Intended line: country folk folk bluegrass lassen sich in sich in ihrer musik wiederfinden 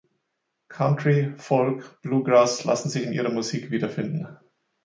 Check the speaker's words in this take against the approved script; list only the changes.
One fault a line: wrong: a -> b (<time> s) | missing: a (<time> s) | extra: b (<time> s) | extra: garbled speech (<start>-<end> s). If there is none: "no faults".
missing: folk (2.0 s)
missing: sich in (3.1 s)